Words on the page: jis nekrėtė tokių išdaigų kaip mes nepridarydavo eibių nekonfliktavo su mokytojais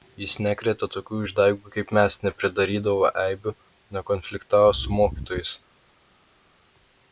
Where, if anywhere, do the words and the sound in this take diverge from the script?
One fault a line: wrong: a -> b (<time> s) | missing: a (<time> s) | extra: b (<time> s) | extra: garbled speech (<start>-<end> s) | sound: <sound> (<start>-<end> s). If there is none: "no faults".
no faults